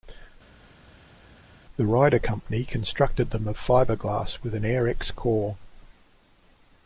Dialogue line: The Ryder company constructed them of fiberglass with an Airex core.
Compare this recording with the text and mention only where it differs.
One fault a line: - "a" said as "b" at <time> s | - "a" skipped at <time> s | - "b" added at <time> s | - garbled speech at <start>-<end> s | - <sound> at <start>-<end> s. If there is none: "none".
none